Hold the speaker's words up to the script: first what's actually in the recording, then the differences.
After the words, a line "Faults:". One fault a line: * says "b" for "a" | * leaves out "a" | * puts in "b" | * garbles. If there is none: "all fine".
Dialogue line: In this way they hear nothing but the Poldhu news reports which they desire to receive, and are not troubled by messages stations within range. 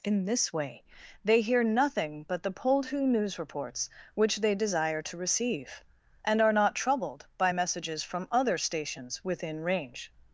In this way they hear nothing but the Poldhu news reports which they desire to receive, and are not troubled by messages from other stations within range.
Faults:
* puts in "from other"